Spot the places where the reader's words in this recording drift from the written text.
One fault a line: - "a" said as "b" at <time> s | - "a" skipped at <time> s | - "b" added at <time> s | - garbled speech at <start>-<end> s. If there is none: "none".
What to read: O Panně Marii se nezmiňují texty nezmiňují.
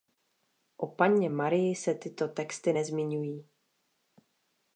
- "nezmiňují" said as "tyto" at 1.9 s